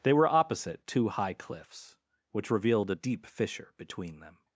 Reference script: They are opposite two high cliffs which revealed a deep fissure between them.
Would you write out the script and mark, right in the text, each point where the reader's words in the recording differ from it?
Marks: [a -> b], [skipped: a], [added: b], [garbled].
They [are -> were] opposite two high cliffs which revealed a deep fissure between them.